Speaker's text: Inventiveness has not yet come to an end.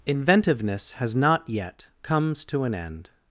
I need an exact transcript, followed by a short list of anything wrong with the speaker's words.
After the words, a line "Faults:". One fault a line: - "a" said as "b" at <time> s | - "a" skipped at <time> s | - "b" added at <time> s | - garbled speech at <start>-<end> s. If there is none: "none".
Inventiveness has not yet comes to an end.
Faults:
- "come" said as "comes" at 2.0 s